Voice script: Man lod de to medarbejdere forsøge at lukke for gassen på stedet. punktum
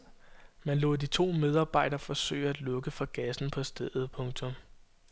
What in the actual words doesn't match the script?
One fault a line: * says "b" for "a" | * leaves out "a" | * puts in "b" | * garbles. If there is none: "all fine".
all fine